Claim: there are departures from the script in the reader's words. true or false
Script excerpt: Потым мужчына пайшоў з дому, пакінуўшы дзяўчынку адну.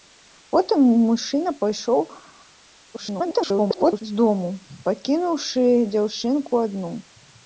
true